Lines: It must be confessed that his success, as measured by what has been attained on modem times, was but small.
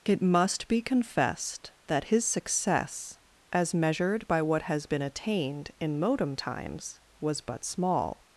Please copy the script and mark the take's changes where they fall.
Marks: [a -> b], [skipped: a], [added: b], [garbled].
It must be confessed that his success, as measured by what has been attained [on -> in] modem times, was but small.